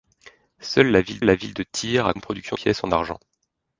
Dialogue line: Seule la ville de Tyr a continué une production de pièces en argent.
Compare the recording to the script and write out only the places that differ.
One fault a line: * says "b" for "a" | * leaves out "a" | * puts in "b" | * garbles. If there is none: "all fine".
* puts in "la ville"
* leaves out "continué"
* leaves out "de"